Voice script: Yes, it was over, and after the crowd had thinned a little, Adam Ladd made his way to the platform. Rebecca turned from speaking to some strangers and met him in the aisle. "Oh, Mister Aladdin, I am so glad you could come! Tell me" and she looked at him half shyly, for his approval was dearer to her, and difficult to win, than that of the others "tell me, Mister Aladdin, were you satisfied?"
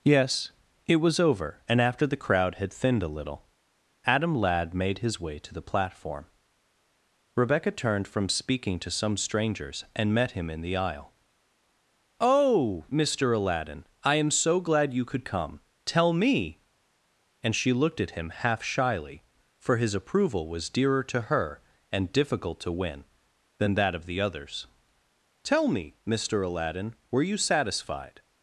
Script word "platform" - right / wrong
right